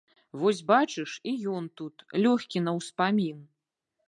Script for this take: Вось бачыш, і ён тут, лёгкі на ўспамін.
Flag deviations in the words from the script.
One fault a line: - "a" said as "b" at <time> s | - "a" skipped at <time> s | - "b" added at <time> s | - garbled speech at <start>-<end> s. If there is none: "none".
none